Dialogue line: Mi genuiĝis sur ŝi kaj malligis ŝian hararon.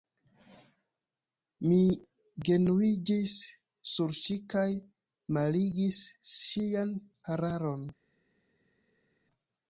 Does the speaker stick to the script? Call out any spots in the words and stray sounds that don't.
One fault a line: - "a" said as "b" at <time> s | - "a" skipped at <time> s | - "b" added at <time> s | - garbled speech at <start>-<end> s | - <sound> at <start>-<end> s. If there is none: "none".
none